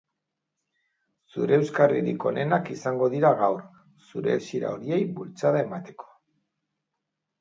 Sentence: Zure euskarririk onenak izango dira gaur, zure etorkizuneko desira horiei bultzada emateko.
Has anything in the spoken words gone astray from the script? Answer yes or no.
yes